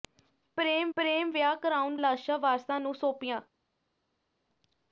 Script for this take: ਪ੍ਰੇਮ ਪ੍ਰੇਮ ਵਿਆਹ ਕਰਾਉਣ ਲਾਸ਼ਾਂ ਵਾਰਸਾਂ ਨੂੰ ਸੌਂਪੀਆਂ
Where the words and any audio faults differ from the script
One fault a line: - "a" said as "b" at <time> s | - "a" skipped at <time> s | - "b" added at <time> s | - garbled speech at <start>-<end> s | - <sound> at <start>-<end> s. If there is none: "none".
none